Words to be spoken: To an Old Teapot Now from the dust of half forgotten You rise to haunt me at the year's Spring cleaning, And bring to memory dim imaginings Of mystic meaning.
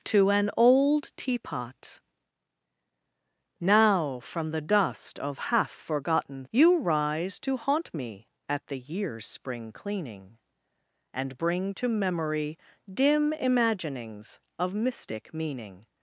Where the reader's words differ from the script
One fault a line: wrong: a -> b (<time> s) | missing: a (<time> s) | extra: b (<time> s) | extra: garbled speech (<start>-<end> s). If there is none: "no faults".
no faults